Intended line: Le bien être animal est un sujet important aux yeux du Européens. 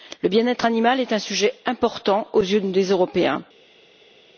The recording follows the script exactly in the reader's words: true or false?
false